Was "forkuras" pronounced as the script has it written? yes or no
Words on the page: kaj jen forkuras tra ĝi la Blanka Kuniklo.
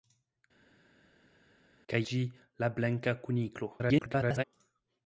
no